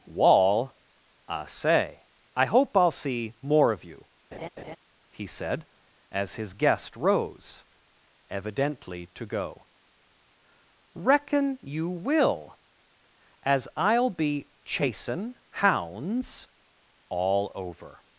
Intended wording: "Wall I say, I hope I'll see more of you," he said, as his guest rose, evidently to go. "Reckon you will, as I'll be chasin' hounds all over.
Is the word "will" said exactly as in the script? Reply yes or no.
yes